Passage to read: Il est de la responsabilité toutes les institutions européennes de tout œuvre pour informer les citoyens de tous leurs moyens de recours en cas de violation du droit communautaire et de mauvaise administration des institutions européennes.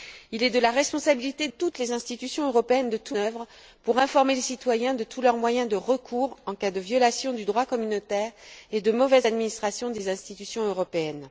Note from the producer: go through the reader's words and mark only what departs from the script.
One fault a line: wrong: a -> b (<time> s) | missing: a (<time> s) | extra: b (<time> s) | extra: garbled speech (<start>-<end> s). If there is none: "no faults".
no faults